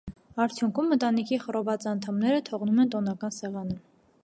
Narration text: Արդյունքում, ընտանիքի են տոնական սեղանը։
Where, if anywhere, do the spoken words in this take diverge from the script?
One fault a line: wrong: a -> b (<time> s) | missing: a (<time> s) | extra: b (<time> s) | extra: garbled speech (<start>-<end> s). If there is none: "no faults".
extra: խռոված անդամները թողնում (1.4 s)